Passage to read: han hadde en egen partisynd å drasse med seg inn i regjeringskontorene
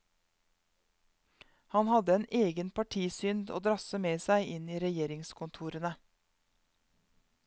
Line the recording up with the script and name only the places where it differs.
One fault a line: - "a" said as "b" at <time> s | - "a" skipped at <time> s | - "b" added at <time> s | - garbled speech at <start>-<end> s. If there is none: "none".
none